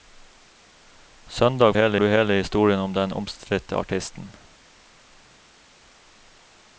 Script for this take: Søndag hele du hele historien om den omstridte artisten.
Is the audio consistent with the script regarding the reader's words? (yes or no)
yes